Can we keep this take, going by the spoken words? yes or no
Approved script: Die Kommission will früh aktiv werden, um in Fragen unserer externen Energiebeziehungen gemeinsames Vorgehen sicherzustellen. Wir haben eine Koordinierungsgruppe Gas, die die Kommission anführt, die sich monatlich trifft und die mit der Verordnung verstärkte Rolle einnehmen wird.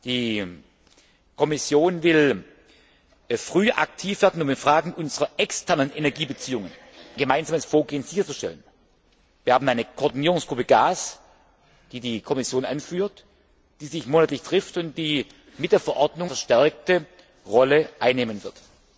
yes